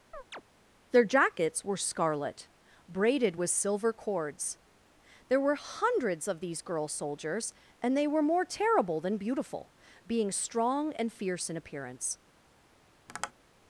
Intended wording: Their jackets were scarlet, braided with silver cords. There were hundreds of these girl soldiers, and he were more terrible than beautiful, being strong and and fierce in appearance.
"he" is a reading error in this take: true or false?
true